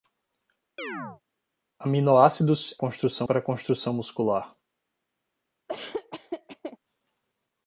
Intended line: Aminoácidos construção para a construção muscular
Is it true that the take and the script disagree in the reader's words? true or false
false